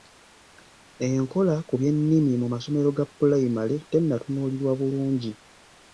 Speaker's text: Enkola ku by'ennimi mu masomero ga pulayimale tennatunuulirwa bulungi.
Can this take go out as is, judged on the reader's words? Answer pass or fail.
pass